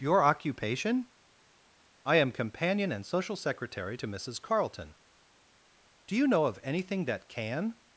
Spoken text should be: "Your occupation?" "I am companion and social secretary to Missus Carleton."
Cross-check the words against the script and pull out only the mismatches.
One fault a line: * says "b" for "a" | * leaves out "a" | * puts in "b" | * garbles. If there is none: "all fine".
* puts in "Do you know of anything that can"